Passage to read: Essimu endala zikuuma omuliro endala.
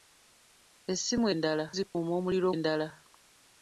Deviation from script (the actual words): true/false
false